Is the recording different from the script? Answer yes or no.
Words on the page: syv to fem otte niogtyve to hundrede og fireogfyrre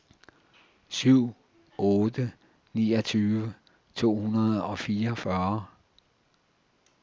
yes